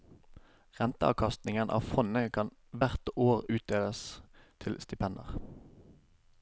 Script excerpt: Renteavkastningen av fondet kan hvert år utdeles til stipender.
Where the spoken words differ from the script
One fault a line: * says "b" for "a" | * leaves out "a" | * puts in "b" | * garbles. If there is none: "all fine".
all fine